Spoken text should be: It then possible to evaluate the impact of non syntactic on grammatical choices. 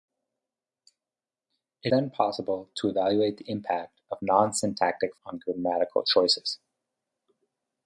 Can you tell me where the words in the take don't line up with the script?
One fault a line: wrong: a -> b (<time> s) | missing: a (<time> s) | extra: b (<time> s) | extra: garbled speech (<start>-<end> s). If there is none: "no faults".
no faults